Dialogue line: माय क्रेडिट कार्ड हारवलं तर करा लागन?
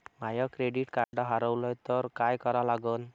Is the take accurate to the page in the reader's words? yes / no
no